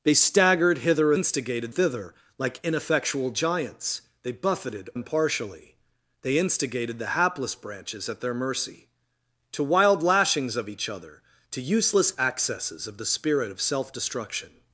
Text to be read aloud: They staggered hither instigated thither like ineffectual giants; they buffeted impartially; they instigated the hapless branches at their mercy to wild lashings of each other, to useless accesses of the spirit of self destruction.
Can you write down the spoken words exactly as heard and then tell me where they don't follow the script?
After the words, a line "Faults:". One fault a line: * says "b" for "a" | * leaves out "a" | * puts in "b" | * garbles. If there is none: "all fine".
They staggered hither instigated thither like ineffectual giants; they buffeted impartially; they instigated the hapless branches at their mercy to wild lashings of each other, to useless accesses of the spirit of self destruction.
Faults:
all fine